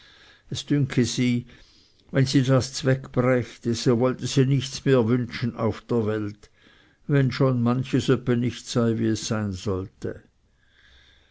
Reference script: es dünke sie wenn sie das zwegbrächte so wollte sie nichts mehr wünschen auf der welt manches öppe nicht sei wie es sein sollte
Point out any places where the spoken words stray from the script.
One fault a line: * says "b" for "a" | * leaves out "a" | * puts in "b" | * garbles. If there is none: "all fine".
* puts in "wenn schon"